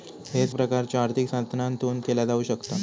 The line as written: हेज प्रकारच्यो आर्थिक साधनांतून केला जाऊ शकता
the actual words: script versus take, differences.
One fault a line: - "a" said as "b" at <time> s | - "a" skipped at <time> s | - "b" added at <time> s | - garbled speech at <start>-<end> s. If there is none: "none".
none